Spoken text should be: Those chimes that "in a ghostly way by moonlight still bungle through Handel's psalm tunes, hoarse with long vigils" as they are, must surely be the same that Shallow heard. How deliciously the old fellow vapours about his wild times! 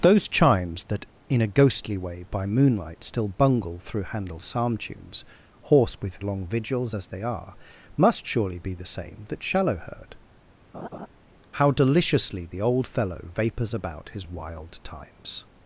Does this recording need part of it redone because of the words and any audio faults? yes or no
yes